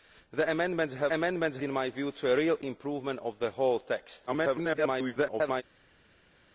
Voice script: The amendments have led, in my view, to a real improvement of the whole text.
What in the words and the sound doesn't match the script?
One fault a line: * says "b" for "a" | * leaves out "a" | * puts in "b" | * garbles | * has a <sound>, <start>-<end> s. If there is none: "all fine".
* says "amendments" for "led"
* garbles